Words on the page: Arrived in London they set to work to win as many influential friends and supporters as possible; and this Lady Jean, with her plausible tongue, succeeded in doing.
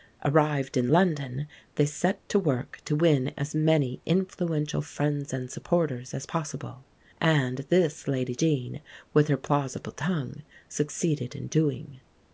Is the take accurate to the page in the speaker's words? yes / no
yes